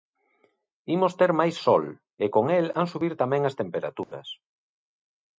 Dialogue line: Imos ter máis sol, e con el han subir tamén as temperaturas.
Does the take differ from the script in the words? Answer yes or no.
no